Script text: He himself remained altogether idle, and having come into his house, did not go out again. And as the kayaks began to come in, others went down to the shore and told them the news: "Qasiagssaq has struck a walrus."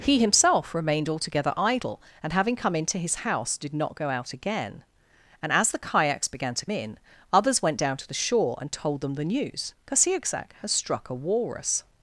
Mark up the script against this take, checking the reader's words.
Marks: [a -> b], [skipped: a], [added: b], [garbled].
He himself remained altogether idle, and having come into his house, did not go out again. And as the kayaks began to [skipped: come] in, others went down to the shore and told them the news: "Qasiagssaq has struck a walrus."